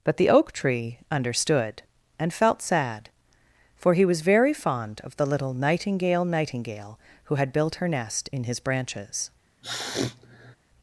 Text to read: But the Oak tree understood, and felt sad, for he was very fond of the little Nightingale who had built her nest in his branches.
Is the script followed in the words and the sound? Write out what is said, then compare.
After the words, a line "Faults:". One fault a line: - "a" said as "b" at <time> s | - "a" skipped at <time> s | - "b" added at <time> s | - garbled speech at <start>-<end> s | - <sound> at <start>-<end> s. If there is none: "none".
But the Oak tree understood, and felt sad, for he was very fond of the little Nightingale Nightingale who had built her nest in his branches.
Faults:
- "Nightingale" added at 6.2 s
- sniff at 9.6-10.6 s